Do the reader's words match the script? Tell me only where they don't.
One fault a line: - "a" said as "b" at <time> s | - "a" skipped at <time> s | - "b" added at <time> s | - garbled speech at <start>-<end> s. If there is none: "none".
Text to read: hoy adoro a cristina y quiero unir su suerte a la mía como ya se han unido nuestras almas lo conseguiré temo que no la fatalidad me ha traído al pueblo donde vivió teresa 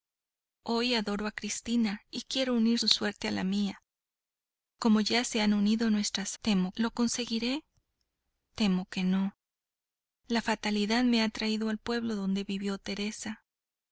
- "almas" said as "temo" at 6.4 s